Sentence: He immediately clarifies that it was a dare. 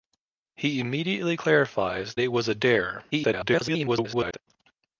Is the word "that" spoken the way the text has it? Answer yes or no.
no